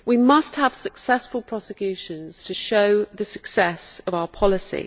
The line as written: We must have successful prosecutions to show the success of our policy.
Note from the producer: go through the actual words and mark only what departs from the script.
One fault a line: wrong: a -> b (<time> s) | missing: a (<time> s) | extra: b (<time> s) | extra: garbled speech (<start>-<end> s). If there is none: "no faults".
no faults